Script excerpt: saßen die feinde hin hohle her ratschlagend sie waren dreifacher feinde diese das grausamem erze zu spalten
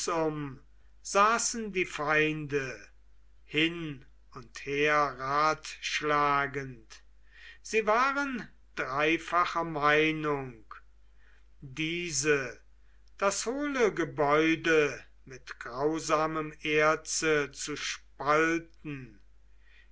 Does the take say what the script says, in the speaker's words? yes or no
no